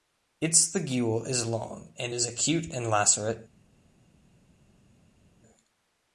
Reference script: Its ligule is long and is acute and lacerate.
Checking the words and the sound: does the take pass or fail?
pass